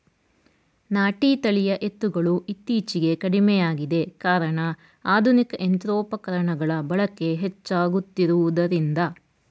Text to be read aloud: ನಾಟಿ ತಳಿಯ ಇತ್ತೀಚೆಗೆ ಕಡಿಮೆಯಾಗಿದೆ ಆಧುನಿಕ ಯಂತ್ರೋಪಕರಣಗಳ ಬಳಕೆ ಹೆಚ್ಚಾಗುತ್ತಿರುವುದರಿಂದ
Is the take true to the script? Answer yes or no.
no